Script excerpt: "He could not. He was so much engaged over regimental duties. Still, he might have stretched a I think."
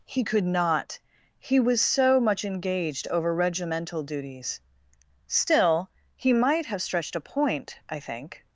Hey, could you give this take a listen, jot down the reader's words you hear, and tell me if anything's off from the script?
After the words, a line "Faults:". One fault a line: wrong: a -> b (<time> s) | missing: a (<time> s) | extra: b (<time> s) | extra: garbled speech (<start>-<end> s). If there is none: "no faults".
"He could not. He was so much engaged over regimental duties. Still, he might have stretched a point, I think."
Faults:
extra: point (7.2 s)